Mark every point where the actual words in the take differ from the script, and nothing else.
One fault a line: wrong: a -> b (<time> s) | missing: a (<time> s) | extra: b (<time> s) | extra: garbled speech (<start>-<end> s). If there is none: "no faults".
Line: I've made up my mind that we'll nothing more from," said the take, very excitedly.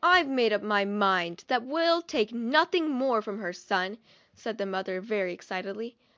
extra: take (2.0 s)
extra: her son (3.4 s)
wrong: take -> mother (4.6 s)